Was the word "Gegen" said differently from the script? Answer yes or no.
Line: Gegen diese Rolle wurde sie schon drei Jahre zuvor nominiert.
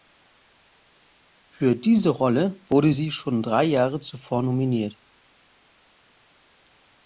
yes